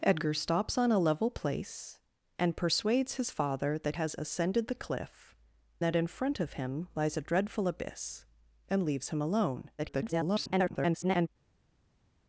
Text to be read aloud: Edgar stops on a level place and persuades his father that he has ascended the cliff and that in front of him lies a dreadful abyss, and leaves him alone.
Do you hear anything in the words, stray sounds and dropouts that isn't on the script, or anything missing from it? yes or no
yes